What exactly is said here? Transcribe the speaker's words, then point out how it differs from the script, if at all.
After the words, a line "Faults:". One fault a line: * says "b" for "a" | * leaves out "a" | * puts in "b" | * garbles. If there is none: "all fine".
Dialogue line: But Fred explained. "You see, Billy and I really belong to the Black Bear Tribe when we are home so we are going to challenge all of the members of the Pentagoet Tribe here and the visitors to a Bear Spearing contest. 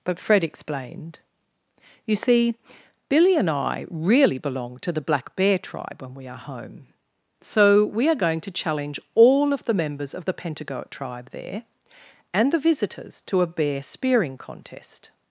But Fred explained. "You see, Billy and I really belong to the Black Bear Tribe when we are home so we are going to challenge all of the members of the Pentagoet Tribe there and the visitors to a Bear Spearing contest.
Faults:
* says "there" for "here"